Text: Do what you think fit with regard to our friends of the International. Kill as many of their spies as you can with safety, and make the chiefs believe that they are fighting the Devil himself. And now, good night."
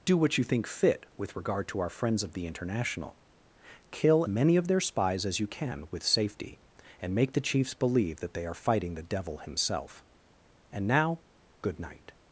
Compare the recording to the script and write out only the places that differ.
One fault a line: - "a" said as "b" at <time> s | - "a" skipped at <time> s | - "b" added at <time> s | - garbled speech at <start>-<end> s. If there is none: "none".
- "as" skipped at 4.2 s